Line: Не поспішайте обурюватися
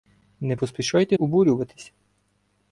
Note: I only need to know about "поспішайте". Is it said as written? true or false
true